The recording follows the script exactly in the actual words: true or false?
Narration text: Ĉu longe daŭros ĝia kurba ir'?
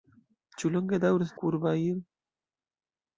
false